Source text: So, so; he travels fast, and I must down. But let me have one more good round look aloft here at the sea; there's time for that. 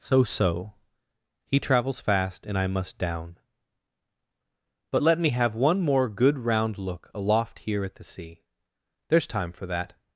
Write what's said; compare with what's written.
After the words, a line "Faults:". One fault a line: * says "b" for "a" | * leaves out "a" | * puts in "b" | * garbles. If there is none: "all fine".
So, so; he travels fast, and I must down. But let me have one more good round look aloft here at the sea; there's time for that.
Faults:
all fine